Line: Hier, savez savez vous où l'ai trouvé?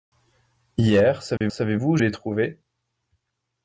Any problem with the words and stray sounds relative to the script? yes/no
yes